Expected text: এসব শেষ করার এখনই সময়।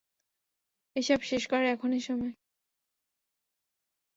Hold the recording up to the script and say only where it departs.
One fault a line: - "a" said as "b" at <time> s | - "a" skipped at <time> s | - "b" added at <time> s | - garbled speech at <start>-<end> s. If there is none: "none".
none